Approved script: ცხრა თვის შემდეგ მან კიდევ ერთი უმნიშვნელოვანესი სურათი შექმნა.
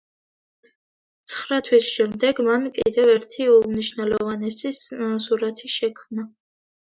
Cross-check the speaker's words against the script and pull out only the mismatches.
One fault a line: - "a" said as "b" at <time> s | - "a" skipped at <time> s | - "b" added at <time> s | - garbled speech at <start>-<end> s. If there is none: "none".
none